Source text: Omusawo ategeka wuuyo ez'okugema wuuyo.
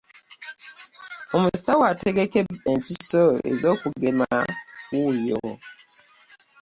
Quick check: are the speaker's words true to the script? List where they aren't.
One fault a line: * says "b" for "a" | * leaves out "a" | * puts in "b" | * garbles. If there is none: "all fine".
* says "empiso" for "wuuyo"